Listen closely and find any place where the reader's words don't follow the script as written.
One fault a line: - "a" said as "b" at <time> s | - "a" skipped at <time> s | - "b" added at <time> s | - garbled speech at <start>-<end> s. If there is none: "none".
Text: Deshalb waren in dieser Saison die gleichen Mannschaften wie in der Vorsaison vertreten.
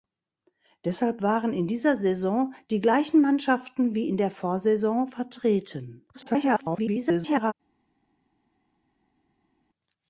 - garbled speech at 6.1-7.5 s